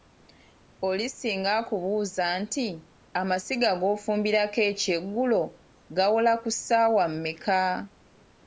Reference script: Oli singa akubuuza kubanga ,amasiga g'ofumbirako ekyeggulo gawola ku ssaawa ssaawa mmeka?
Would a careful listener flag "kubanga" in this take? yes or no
yes